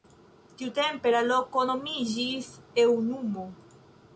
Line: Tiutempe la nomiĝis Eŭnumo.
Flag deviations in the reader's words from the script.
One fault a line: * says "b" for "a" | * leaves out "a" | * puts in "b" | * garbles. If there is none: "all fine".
* puts in "loko"